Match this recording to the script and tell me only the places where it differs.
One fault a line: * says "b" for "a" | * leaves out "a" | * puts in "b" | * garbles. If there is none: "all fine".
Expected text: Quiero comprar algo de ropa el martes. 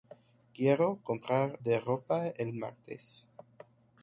* leaves out "algo"